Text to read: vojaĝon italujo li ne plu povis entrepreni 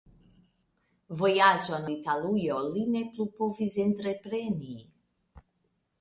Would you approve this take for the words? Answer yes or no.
yes